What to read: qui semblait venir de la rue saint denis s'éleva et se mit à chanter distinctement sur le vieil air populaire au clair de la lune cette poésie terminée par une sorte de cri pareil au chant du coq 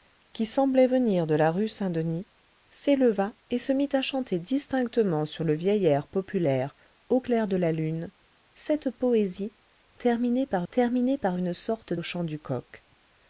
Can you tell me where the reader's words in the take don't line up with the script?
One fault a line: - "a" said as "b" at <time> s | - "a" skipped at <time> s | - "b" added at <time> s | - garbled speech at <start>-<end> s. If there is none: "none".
- "terminée par" added at 10.7 s
- "de cri pareil" skipped at 11.9 s